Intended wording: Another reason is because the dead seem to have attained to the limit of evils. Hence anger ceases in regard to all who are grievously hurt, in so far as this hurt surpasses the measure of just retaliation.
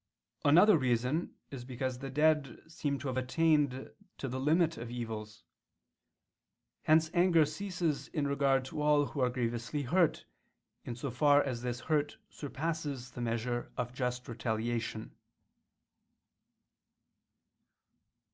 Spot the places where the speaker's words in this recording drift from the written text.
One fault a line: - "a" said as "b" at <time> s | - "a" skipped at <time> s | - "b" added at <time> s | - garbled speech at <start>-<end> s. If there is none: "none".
none